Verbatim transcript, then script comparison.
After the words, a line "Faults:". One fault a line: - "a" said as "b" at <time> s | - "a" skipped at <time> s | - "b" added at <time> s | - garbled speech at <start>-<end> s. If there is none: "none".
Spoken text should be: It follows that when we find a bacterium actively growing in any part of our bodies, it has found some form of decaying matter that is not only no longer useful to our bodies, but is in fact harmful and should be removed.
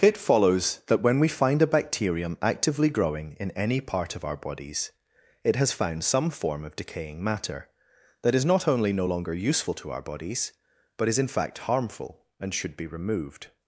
It follows that when we find a bacterium actively growing in any part of our bodies, it has found some form of decaying matter that is not only no longer useful to our bodies, but is in fact harmful and should be removed.
Faults:
none